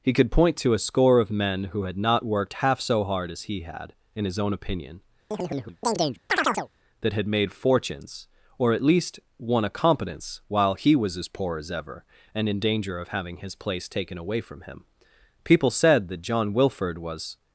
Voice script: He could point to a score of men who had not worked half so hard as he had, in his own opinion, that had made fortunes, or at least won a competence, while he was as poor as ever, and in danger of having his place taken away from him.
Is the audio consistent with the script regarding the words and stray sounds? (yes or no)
no